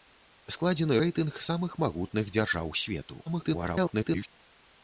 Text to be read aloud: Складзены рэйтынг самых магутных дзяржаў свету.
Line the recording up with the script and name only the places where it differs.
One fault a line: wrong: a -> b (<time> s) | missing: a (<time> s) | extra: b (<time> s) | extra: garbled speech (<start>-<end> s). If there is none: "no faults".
extra: garbled speech (3.3-4.3 s)